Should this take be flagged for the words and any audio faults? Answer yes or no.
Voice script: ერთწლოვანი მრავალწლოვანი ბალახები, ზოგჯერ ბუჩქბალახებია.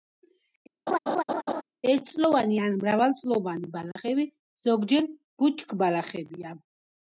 yes